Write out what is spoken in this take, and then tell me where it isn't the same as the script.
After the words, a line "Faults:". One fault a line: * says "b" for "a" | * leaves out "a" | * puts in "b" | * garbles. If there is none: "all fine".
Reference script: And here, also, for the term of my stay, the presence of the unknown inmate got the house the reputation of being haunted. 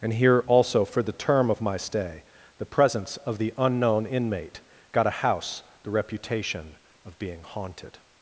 And here, also, for the term of my stay, the presence of the unknown inmate got a house the reputation of being haunted.
Faults:
* says "a" for "the"